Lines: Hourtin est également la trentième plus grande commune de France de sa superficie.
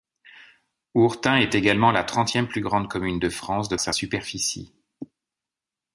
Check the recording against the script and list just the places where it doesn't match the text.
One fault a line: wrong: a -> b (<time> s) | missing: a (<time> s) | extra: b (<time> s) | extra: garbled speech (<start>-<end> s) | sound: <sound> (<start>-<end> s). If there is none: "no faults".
no faults